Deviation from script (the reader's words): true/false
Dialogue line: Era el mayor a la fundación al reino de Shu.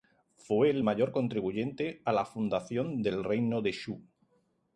true